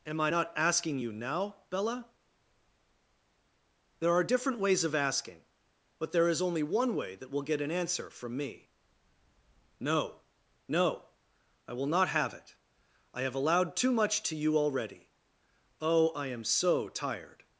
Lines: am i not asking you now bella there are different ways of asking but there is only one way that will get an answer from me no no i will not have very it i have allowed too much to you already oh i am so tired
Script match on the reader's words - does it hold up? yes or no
no